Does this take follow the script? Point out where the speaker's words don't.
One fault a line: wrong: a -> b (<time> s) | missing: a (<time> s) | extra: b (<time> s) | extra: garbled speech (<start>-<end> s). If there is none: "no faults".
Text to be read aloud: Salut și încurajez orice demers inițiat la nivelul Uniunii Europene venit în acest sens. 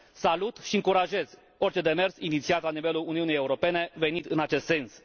no faults